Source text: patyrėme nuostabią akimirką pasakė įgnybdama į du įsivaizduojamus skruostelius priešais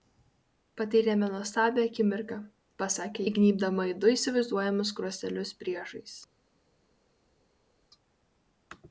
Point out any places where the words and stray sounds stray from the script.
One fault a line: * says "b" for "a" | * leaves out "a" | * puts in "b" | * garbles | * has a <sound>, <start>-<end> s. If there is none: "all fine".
all fine